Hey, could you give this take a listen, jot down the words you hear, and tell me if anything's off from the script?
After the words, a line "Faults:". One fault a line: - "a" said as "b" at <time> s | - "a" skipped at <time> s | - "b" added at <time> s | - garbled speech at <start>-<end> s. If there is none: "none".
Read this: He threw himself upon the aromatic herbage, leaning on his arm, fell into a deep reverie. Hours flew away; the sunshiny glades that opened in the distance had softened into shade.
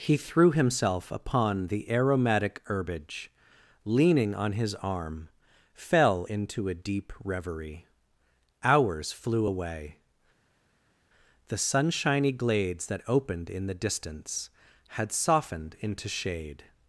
He threw himself upon the aromatic herbage, leaning on his arm, fell into a deep reverie. Hours flew away; the sunshiny glades that opened in the distance had softened into shade.
Faults:
none